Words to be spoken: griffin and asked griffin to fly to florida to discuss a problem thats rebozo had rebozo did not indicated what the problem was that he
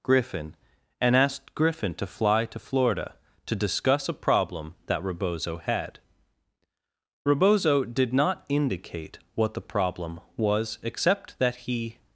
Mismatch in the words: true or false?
true